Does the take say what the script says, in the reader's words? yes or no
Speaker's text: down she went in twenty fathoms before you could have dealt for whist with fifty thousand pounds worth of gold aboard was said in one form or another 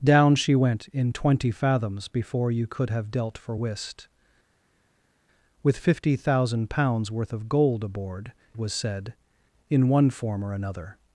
yes